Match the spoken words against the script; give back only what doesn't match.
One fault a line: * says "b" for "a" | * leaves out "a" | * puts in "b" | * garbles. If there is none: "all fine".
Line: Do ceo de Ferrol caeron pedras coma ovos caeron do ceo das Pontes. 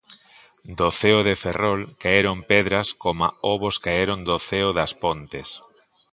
all fine